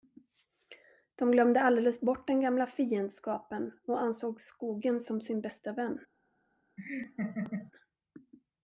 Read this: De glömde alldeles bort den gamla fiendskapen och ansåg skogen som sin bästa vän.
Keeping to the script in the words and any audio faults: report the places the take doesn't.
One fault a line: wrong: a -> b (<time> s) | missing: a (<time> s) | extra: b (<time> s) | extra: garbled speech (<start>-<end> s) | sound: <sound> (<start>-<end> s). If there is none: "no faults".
sound: laugh (6.8-7.7 s)